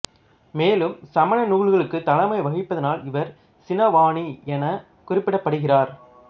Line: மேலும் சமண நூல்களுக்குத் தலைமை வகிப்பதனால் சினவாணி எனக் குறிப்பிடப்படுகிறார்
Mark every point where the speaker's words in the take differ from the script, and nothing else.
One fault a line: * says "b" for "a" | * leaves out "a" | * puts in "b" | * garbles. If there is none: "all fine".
* puts in "இவர்"